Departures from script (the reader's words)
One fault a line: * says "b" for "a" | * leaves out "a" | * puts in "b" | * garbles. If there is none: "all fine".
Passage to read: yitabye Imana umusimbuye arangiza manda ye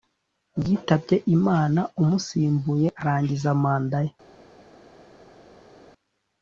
all fine